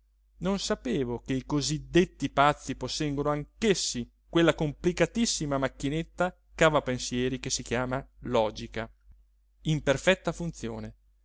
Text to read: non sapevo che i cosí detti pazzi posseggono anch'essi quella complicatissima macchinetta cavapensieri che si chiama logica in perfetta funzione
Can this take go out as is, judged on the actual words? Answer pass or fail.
pass